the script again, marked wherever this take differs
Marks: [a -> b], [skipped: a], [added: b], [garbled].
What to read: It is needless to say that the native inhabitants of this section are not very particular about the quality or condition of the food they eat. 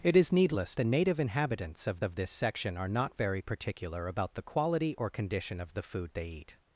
It is needless [skipped: to say that] the native inhabitants of [added: of] this section are not very particular about the quality or condition of the food they eat.